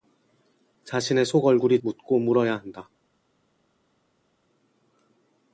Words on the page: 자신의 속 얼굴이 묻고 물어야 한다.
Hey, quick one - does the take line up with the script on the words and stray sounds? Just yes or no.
yes